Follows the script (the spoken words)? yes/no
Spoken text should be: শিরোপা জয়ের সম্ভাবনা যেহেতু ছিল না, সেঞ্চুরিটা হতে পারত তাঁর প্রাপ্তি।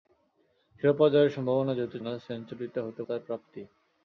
no